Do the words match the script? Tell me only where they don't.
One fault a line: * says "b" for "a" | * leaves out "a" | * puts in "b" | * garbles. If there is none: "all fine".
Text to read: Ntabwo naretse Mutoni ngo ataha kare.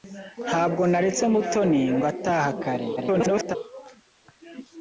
* garbles